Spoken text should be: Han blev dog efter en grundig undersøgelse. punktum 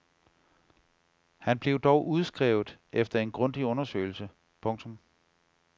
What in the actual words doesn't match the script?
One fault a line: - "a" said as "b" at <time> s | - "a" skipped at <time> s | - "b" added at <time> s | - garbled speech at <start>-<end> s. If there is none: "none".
- "udskrevet" added at 2.1 s